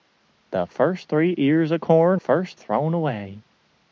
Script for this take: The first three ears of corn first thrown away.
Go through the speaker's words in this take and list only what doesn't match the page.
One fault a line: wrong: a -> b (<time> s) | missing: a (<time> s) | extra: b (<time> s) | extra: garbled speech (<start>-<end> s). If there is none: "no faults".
no faults